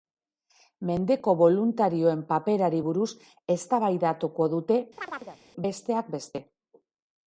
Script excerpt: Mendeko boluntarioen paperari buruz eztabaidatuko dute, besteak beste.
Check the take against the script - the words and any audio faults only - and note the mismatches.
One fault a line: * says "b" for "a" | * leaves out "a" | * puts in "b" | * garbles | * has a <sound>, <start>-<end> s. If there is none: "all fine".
* has a chirp, 5.0-5.4 s